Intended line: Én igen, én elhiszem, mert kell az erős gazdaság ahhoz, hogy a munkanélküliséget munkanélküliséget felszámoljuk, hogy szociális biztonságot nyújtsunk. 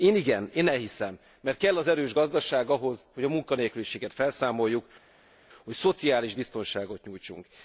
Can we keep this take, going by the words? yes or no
no